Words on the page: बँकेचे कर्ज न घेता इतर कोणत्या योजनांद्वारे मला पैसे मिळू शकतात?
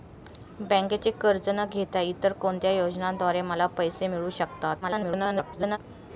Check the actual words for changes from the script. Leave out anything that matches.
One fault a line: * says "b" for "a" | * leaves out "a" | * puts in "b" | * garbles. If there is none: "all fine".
* garbles